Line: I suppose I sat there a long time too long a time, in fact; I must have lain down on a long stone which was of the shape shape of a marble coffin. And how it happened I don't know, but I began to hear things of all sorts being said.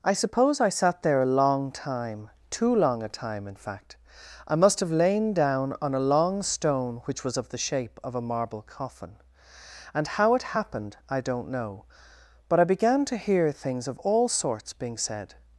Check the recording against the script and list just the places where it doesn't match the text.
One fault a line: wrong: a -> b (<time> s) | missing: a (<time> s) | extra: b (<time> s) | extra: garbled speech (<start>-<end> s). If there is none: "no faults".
missing: shape (8.0 s)